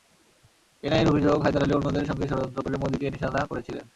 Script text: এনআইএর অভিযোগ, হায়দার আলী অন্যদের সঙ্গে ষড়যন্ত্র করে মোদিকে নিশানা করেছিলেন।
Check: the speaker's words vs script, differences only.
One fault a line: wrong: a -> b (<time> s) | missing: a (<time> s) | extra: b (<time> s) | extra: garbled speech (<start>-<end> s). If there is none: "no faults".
no faults